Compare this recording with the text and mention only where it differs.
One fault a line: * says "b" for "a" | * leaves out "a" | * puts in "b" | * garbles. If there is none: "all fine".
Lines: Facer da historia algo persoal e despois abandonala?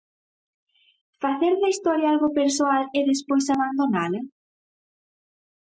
all fine